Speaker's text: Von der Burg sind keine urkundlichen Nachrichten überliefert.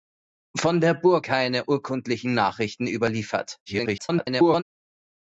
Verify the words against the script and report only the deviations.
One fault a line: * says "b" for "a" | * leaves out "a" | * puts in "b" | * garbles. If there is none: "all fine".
* leaves out "sind"
* garbles